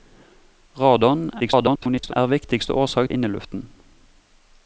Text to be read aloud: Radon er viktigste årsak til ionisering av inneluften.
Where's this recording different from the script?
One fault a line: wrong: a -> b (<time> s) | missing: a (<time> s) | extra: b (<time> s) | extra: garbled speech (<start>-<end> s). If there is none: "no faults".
extra: garbled speech (1.4-2.1 s)
missing: til ionisering av (3.1 s)